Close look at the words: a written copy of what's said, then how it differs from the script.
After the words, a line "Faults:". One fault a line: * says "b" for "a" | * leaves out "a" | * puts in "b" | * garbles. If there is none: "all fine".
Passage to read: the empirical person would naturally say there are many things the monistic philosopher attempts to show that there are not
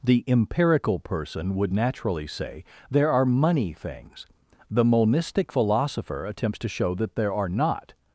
the empirical person would naturally say there are money things the monistic philosopher attempts to show that there are not
Faults:
* says "money" for "many"